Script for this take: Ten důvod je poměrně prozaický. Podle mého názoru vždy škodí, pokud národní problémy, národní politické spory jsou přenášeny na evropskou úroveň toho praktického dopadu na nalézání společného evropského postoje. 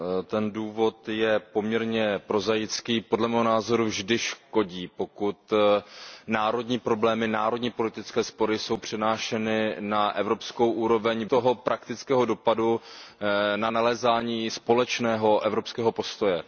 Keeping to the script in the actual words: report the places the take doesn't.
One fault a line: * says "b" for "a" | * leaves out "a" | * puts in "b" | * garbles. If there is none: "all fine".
all fine